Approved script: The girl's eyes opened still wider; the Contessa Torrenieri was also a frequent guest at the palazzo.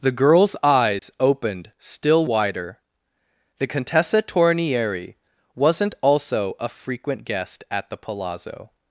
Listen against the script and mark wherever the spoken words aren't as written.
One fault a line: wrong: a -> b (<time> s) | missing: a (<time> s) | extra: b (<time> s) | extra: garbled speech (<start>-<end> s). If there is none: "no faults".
wrong: was -> wasn't (5.5 s)